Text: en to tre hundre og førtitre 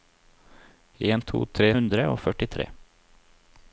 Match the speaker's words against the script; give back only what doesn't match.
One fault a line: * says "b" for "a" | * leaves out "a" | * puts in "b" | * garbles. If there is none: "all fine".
all fine